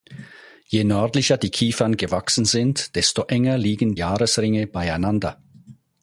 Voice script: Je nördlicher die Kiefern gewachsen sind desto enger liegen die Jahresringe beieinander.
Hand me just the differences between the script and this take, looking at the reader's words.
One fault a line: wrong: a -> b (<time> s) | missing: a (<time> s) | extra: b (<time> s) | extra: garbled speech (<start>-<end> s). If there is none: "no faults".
missing: die (4.0 s)